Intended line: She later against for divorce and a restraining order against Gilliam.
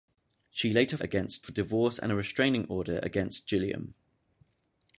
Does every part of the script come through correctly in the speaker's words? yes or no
yes